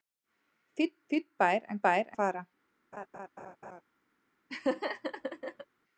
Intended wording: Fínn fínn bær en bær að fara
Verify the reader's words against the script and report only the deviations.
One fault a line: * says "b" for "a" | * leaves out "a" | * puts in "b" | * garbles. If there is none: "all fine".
all fine